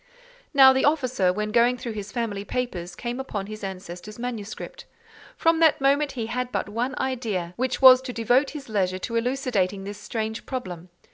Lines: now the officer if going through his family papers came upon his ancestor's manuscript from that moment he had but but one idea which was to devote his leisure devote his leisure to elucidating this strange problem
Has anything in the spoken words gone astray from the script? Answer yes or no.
yes